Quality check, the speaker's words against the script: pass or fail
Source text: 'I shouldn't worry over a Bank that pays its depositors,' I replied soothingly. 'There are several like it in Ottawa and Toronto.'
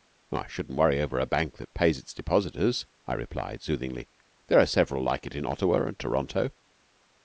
pass